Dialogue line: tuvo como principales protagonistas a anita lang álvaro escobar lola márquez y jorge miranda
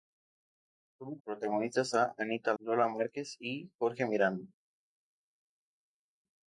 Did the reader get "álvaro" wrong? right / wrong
wrong